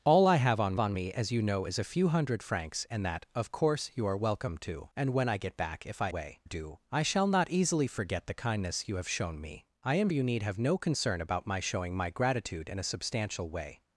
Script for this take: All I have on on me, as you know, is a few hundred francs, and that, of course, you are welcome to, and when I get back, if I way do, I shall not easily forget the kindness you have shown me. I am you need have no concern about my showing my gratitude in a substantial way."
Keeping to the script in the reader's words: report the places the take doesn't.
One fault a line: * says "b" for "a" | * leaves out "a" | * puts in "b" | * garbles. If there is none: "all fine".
all fine